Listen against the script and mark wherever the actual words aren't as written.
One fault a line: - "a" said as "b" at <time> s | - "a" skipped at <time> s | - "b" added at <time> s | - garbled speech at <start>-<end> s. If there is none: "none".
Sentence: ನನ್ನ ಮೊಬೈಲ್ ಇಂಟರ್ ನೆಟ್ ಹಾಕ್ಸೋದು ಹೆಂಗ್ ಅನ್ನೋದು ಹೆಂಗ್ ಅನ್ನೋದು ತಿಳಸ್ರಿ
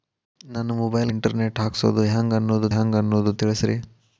none